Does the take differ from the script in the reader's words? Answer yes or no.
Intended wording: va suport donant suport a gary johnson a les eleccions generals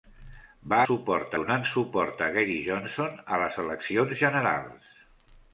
no